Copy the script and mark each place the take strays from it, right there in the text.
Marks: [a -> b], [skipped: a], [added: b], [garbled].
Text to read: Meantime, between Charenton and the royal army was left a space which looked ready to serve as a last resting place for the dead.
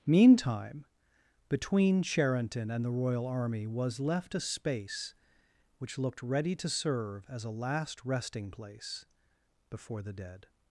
Meantime, between Charenton and the royal army was left a space which looked ready to serve as a last resting place [for -> before] the dead.